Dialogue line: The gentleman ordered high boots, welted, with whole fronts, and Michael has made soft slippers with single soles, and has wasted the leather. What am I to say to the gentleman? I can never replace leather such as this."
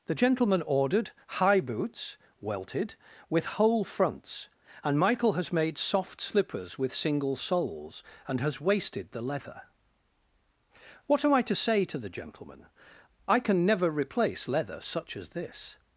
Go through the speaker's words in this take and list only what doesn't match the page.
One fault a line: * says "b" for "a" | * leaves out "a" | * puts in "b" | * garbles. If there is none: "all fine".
all fine